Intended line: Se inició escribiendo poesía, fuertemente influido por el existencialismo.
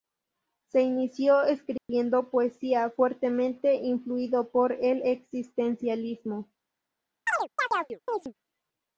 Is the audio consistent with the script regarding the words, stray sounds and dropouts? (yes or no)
no